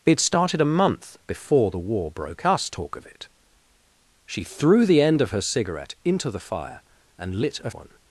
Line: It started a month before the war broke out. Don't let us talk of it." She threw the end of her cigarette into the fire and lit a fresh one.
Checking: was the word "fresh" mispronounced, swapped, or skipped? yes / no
yes